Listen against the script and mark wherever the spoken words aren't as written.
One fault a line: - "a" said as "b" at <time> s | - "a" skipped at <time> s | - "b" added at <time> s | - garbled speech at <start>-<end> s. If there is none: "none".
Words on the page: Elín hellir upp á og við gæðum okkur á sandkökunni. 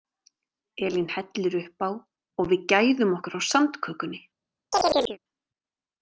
none